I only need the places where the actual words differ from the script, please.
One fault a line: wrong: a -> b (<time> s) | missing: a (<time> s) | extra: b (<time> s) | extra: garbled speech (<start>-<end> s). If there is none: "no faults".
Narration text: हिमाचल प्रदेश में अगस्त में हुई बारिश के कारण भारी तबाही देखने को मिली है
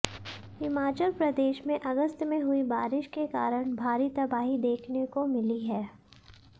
no faults